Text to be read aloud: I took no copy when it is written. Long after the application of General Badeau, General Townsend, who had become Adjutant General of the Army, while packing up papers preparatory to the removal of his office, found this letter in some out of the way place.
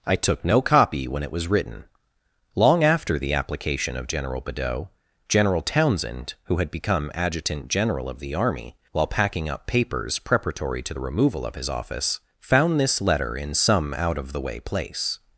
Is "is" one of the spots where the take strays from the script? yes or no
yes